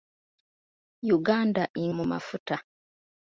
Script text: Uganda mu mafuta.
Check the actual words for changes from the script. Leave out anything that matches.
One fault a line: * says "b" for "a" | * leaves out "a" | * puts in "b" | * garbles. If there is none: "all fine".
all fine